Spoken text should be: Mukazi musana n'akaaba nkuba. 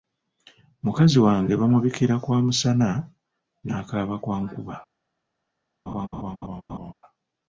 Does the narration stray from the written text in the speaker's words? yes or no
yes